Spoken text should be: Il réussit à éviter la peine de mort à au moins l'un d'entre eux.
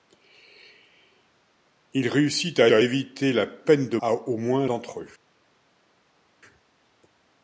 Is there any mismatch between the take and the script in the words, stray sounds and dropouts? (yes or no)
yes